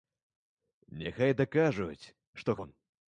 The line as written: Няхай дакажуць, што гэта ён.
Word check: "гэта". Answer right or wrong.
wrong